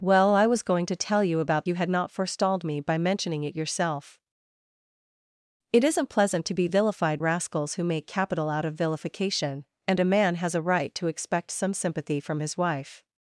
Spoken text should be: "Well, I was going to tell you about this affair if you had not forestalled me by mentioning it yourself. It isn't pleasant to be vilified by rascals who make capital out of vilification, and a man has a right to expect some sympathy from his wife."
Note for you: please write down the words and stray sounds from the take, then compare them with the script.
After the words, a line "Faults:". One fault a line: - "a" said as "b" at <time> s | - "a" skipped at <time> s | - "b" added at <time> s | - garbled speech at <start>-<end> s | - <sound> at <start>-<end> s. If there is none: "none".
"Well, I was going to tell you about you had not forestalled me by mentioning it yourself. It isn't pleasant to be vilified rascals who make capital out of vilification, and a man has a right to expect some sympathy from his wife."
Faults:
- "this affair if" skipped at 1.7 s
- "by" skipped at 7.2 s